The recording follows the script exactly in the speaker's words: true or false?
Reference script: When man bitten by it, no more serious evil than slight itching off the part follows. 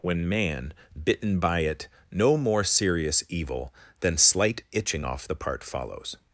true